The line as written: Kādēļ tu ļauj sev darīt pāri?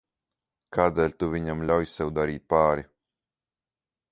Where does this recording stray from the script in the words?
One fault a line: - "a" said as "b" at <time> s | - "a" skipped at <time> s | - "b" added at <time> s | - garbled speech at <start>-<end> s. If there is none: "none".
- "viņam" added at 1.4 s